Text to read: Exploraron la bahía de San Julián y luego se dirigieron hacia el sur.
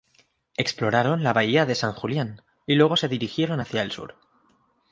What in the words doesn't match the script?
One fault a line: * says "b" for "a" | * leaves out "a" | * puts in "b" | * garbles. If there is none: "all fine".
all fine